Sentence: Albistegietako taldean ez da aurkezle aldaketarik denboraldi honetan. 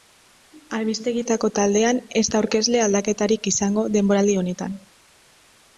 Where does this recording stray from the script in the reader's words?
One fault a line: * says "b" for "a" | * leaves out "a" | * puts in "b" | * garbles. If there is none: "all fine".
* puts in "izango"